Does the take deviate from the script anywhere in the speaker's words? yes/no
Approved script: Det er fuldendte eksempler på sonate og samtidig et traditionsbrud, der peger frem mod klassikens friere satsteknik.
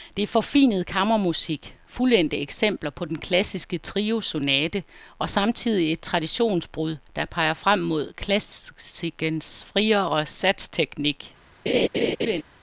yes